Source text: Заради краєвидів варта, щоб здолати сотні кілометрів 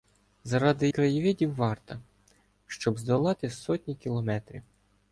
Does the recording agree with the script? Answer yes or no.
yes